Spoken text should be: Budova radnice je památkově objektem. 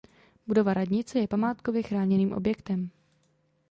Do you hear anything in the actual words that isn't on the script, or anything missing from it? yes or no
yes